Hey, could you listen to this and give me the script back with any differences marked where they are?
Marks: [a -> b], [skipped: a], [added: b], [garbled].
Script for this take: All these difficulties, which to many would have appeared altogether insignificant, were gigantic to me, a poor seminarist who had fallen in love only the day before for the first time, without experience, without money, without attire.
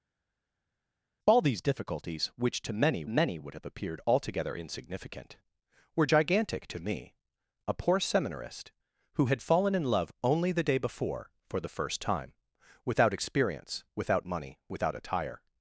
All these difficulties, which to many [added: many] would have appeared altogether insignificant, were gigantic to me, a poor seminarist who had fallen in love only the day before for the first time, without experience, without money, without attire.